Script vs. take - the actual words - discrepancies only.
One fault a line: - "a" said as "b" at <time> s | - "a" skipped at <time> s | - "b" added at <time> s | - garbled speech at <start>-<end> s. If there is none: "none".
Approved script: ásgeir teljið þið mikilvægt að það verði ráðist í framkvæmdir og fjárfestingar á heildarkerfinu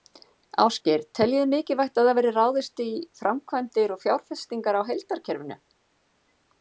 none